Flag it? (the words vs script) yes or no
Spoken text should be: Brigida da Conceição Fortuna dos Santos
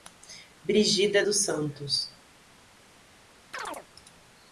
yes